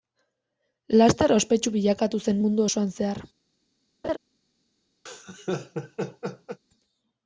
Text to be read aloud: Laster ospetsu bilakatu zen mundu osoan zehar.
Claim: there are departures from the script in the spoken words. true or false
false